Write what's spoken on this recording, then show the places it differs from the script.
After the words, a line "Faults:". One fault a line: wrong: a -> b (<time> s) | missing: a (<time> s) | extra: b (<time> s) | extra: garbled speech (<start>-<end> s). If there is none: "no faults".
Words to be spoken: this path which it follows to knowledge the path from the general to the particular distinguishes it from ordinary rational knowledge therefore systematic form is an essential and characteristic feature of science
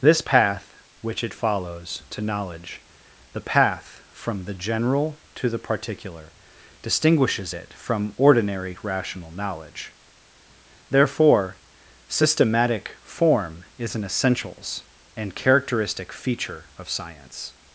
this path which it follows to knowledge the path from the general to the particular distinguishes it from ordinary rational knowledge therefore systematic form is an essentials and characteristic feature of science
Faults:
wrong: essential -> essentials (14.0 s)